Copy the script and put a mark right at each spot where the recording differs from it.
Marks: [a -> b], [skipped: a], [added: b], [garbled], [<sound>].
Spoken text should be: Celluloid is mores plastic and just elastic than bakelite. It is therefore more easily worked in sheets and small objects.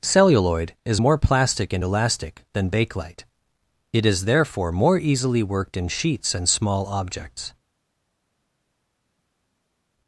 Celluloid is [mores -> more] plastic and [skipped: just] elastic than bakelite. It is therefore more easily worked in sheets and small objects.